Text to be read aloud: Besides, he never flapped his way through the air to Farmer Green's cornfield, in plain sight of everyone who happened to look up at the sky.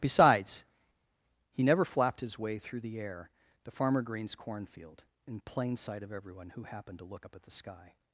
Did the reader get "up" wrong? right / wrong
right